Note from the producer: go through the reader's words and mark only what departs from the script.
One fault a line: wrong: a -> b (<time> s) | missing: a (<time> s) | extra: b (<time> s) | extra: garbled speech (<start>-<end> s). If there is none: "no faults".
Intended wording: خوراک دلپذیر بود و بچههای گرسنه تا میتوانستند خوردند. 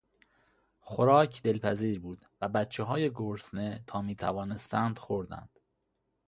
no faults